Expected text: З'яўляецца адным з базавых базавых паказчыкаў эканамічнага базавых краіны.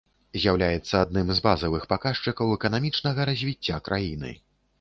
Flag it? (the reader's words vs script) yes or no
yes